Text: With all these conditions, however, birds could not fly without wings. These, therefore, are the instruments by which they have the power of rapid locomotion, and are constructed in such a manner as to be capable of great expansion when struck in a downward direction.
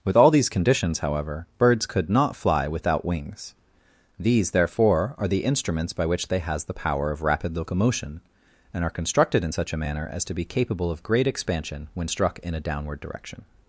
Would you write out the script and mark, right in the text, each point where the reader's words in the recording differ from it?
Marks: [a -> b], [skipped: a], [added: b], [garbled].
With all these conditions, however, birds could not fly without wings. These, therefore, are the instruments by which they [have -> has] the power of rapid locomotion, and are constructed in such a manner as to be capable of great expansion when struck in a downward direction.